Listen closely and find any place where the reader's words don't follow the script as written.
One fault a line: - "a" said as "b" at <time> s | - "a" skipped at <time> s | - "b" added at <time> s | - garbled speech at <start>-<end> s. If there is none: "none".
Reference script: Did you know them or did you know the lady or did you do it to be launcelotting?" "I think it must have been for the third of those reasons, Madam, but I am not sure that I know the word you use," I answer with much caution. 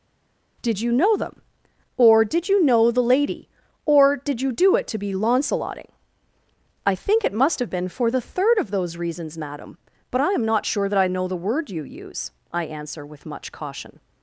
none